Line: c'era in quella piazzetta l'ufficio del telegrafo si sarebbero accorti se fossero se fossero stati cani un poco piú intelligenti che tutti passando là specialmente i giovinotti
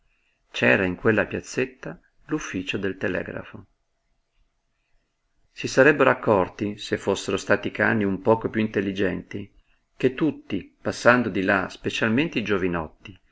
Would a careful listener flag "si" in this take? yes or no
no